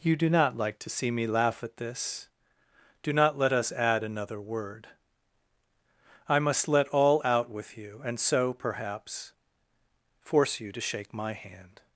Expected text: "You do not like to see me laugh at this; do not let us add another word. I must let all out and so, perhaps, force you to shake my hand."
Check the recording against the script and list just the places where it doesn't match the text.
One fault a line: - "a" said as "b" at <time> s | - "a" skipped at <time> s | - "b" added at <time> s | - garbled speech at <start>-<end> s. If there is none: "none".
- "with you" added at 7.5 s